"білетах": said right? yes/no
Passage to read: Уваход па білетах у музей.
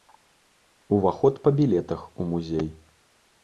yes